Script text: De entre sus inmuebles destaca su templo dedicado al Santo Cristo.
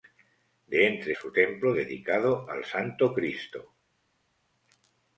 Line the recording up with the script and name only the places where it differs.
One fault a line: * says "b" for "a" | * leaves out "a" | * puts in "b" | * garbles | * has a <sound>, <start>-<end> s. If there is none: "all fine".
* leaves out "sus inmuebles destaca"